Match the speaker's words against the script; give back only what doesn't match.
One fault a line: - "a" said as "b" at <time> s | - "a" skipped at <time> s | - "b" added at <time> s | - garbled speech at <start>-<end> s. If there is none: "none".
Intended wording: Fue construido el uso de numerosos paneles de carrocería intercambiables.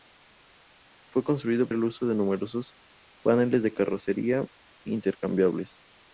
none